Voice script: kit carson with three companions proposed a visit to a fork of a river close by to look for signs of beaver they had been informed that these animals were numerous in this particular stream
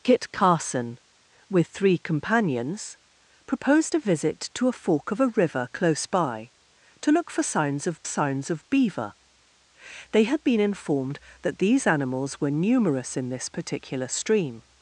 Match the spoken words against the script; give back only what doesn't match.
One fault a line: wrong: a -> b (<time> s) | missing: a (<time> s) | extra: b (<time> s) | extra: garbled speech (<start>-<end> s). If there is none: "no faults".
extra: signs of (8.1 s)